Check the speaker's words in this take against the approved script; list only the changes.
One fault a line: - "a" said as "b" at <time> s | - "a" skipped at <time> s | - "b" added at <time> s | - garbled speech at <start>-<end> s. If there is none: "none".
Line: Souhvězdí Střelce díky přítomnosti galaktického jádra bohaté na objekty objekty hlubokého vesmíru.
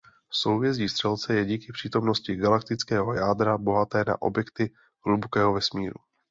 - "je" added at 1.3 s
- "objekty" skipped at 4.7 s